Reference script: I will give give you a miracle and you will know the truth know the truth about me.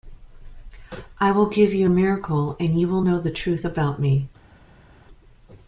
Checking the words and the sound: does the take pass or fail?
fail